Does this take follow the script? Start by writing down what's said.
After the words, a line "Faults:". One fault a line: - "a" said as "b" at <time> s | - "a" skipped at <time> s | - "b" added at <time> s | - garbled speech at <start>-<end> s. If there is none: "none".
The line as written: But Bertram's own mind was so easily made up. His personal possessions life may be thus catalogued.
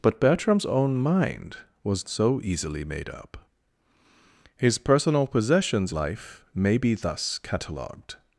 But Bertram's own mind was so easily made up. His personal possessions life may be thus catalogued.
Faults:
none